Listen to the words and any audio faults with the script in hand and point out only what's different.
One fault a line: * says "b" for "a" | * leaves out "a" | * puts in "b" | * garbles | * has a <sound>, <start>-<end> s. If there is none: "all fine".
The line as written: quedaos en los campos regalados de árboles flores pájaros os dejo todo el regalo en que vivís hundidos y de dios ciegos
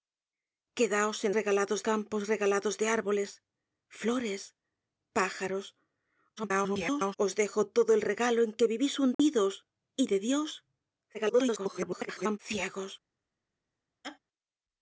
* says "regalados" for "los"
* garbles
* has a dropout, 9.1-9.2 s
* garbles
* has a laugh, 14.0-14.2 s